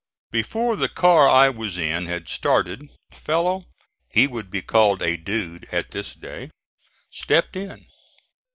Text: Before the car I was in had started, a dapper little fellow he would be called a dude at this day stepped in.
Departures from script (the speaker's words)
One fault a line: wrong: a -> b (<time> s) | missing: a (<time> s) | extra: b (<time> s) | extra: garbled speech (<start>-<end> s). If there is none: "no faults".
missing: a dapper little (2.9 s)